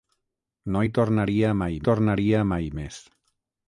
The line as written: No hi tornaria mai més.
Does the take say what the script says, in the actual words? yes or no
no